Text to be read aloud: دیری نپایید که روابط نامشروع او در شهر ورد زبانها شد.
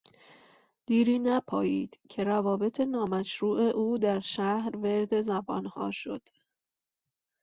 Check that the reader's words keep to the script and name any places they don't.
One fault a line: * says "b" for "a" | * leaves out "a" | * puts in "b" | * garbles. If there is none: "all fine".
all fine